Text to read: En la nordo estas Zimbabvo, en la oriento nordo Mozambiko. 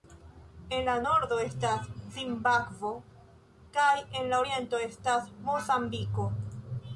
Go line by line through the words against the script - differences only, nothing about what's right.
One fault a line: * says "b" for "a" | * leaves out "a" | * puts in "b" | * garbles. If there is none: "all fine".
* puts in "kaj"
* says "estas" for "nordo"